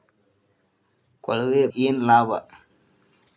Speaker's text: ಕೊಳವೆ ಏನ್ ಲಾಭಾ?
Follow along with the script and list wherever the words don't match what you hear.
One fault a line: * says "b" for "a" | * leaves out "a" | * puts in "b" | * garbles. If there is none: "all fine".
all fine